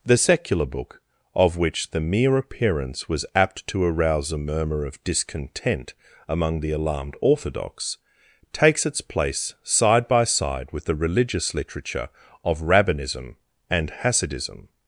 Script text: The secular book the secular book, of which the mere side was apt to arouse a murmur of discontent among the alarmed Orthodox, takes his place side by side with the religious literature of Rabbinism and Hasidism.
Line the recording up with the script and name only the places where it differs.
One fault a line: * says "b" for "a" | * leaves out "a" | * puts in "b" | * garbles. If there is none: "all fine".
* leaves out "the secular book"
* says "appearance" for "side"
* says "its" for "his"